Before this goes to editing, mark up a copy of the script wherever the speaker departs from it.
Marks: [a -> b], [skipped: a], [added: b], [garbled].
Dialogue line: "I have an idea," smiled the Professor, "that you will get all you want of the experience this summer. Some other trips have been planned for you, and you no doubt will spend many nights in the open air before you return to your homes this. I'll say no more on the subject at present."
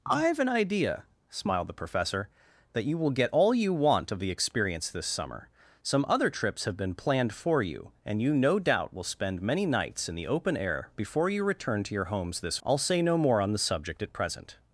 "I have an idea," smiled the Professor, "that you will get all you want of the experience this summer. Some other trips have been planned for you, and you no doubt will spend many nights in the open air before you return to your homes this. I'll say no more on the subject at present."